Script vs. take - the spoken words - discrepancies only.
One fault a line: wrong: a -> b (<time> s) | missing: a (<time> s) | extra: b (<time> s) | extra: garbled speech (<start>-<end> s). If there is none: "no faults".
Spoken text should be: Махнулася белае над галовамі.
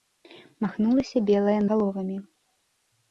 missing: над (1.5 s)